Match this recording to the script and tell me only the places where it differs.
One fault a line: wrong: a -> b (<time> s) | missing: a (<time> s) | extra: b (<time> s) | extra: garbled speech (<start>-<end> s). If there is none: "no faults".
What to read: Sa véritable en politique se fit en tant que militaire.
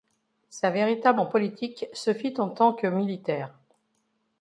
no faults